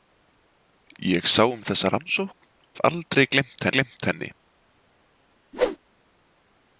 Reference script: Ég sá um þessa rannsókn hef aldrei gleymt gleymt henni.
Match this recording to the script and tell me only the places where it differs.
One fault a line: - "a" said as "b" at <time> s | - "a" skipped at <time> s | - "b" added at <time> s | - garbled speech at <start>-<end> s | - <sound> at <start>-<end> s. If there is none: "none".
- whoosh at 5.5-5.8 s